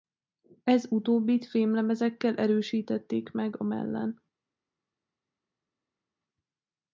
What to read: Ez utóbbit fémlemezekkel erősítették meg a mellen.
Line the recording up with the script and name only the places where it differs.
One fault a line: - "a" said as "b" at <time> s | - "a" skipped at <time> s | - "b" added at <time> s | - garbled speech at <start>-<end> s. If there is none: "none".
none